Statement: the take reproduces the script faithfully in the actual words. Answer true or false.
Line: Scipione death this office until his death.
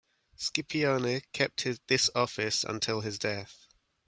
false